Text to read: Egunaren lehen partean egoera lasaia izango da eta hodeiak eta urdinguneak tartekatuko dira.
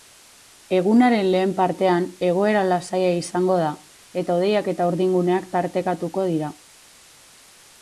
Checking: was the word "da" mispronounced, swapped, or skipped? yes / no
no